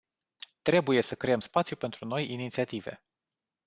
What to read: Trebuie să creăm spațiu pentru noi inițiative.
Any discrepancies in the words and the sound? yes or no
no